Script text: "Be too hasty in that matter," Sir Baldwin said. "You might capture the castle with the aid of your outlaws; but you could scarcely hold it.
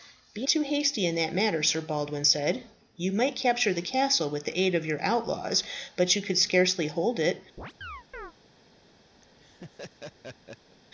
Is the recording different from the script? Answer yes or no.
no